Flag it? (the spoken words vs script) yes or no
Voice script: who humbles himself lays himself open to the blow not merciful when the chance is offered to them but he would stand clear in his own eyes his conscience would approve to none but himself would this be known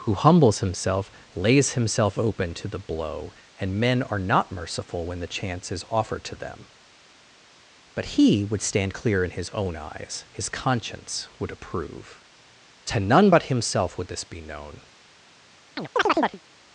yes